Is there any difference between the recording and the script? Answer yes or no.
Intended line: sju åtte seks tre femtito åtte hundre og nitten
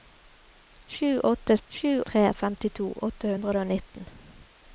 yes